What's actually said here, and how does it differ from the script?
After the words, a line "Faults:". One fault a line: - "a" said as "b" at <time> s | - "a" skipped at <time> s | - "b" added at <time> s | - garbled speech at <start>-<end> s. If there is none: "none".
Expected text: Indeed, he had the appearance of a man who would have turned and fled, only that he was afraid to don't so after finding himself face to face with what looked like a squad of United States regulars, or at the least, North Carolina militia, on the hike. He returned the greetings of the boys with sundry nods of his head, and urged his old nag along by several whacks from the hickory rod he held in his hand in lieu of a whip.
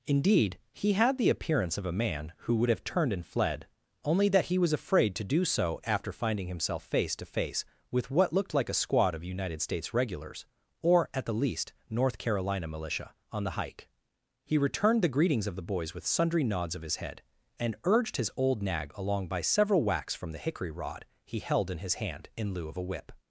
Indeed, he had the appearance of a man who would have turned and fled, only that he was afraid to do so after finding himself face to face with what looked like a squad of United States regulars, or at the least, North Carolina militia, on the hike. He returned the greetings of the boys with sundry nods of his head, and urged his old nag along by several whacks from the hickory rod he held in his hand in lieu of a whip.
Faults:
- "don't" said as "do" at 5.2 s